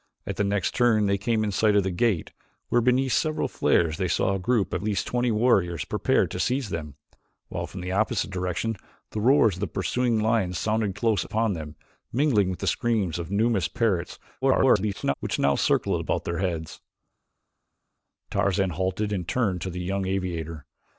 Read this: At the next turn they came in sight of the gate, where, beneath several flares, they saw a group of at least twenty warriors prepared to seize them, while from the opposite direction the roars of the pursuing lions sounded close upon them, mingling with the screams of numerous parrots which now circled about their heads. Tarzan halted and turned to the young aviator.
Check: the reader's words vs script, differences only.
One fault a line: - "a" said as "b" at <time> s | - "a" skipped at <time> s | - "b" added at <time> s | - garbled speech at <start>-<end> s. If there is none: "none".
- "at" skipped at 4.8 s
- garbled speech at 14.4-15.1 s